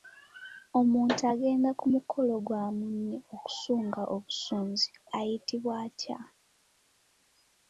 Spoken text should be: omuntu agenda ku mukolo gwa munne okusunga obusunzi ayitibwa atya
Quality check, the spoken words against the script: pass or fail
pass